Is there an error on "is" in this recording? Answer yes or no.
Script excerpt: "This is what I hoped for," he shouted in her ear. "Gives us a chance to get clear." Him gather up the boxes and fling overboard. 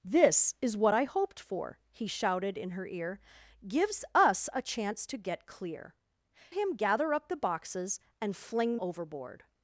no